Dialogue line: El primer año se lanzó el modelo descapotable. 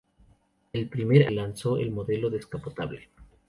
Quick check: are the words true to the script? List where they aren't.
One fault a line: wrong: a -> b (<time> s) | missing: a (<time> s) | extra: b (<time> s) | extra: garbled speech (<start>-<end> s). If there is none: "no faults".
missing: año se (1.3 s)